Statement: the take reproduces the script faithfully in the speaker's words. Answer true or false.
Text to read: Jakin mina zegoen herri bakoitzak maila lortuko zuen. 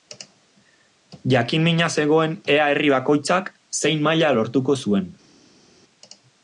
false